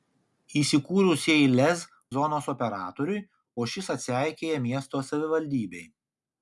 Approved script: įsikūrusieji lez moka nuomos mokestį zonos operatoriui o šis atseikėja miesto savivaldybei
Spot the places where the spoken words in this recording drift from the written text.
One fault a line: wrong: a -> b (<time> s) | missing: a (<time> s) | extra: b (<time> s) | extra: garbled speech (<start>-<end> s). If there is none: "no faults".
missing: moka nuomos mokestį (1.8 s)